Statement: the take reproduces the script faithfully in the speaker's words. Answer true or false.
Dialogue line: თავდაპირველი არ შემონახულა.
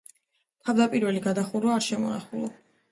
false